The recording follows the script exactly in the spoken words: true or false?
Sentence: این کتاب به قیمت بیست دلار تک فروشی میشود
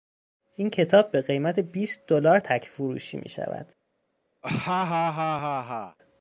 true